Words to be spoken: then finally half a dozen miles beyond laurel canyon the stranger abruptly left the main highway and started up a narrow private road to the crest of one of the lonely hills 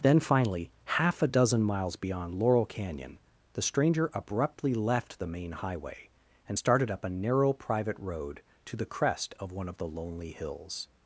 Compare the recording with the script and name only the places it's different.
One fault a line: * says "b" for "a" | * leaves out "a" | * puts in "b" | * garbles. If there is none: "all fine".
all fine